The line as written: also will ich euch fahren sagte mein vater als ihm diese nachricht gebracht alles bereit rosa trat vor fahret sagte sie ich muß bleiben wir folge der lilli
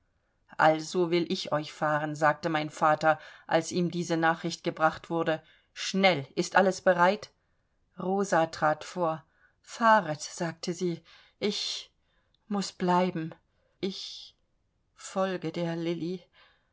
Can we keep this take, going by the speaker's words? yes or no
no